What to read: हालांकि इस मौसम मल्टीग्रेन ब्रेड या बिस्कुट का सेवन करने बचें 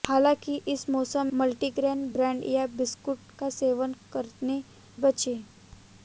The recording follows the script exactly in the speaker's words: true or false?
true